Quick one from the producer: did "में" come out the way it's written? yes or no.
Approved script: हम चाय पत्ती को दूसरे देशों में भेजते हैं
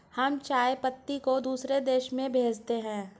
yes